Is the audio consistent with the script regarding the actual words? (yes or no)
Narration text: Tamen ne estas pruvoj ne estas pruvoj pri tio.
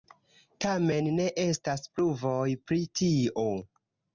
no